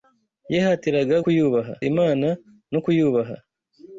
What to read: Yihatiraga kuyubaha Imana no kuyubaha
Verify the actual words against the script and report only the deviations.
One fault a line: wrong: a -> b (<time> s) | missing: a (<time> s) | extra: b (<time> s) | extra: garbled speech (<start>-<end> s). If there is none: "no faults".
no faults